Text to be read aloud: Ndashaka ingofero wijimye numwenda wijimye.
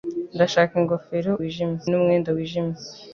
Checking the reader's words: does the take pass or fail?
pass